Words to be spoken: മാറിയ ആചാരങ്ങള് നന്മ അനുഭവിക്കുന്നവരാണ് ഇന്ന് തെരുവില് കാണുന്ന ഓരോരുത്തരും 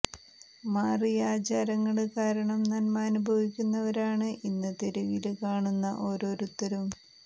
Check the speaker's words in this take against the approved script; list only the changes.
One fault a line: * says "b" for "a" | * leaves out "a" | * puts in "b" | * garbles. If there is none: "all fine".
* puts in "കാരണം"